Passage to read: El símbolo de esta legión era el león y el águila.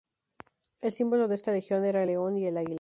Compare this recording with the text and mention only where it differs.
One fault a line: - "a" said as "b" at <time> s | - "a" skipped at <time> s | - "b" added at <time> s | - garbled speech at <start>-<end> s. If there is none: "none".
none